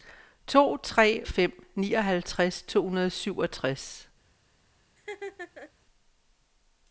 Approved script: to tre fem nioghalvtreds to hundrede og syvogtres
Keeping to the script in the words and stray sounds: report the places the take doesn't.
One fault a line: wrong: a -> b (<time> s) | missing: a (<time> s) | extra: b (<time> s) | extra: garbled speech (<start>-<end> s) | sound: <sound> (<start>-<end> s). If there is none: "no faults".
sound: laugh (5.0-5.7 s)